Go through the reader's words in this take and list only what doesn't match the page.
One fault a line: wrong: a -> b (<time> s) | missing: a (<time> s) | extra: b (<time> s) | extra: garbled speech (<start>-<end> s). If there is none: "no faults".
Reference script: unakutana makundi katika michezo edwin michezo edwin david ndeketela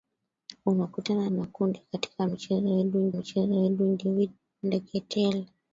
no faults